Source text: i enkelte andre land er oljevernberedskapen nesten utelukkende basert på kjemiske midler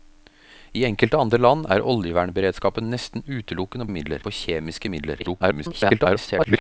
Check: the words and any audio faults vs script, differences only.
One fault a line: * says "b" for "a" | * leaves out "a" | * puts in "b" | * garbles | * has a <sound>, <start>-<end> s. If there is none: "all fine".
* says "midler" for "basert"
* garbles